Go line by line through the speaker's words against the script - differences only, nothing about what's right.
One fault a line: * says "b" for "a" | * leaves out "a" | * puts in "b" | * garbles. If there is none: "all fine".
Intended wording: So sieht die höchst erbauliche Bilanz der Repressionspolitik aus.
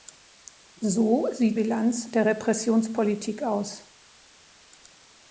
* leaves out "die höchst erbauliche"